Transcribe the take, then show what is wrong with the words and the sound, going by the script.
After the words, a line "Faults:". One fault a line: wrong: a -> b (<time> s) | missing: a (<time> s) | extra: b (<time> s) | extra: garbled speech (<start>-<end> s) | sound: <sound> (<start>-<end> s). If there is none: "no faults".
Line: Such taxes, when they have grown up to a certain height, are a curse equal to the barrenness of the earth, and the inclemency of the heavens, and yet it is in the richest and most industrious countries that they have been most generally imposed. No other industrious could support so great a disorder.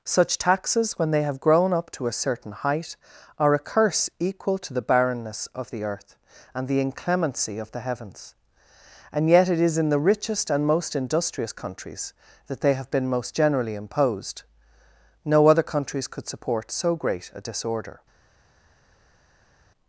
Such taxes, when they have grown up to a certain height, are a curse equal to the barrenness of the earth, and the inclemency of the heavens, and yet it is in the richest and most industrious countries that they have been most generally imposed. No other countries could support so great a disorder.
Faults:
wrong: industrious -> countries (15.6 s)